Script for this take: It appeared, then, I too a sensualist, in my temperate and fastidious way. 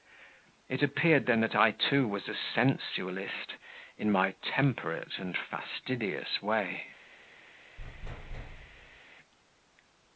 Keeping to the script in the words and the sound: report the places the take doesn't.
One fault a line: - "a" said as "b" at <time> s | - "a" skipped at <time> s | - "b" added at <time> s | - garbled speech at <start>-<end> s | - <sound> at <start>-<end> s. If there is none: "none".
- "that" added at 1.4 s
- "was" added at 2.1 s
- thud at 7.8-9.0 s